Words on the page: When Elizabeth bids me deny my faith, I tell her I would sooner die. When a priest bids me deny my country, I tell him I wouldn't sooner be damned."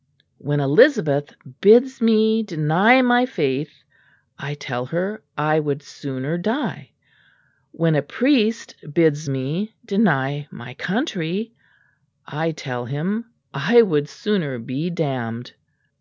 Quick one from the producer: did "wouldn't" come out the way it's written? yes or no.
no